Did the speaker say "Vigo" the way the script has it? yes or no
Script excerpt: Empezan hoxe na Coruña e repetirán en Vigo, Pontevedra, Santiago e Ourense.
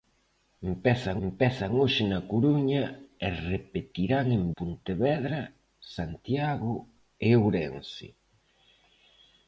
no